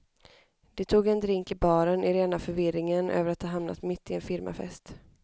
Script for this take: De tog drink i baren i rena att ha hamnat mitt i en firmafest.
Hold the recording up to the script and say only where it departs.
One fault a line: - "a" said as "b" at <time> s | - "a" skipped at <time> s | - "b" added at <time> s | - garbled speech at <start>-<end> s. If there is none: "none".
- "en" added at 1.1 s
- "förvirringen över" added at 2.4 s